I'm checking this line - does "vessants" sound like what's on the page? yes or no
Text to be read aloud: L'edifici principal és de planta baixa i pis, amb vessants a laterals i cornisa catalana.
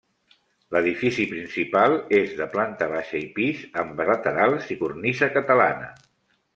no